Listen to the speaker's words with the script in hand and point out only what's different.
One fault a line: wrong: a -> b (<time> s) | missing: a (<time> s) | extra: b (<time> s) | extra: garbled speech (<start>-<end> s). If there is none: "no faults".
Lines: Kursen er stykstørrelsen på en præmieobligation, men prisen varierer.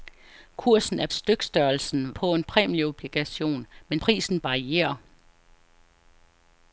no faults